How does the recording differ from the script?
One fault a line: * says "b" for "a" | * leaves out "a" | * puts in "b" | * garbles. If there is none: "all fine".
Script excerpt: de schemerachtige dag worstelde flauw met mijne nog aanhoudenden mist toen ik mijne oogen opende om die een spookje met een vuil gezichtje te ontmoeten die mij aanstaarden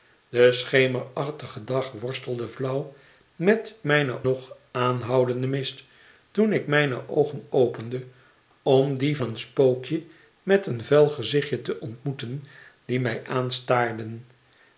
all fine